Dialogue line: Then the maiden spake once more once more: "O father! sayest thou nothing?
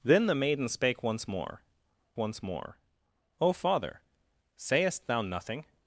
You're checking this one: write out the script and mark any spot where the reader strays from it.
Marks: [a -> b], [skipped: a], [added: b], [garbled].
Then the maiden spake once more once more: "O father! sayest thou nothing?